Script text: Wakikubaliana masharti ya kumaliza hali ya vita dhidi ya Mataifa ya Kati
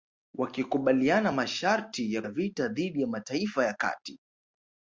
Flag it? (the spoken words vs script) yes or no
yes